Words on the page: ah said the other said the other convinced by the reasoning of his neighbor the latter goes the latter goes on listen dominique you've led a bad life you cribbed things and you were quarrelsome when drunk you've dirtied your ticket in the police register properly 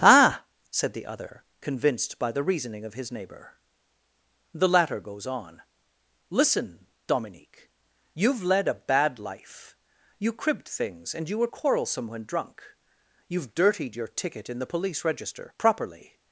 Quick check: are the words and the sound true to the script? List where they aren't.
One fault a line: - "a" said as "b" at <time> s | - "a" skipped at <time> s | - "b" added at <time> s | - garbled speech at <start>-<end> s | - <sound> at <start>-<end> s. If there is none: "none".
- "said the other" skipped at 1.4 s
- "the latter goes" skipped at 5.3 s